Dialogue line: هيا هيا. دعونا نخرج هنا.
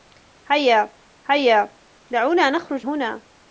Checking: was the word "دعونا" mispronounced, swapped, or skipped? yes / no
no